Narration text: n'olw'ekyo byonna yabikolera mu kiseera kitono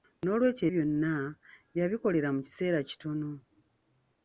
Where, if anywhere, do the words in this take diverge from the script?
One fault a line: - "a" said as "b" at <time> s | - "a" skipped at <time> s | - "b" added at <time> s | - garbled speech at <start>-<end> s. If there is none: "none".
none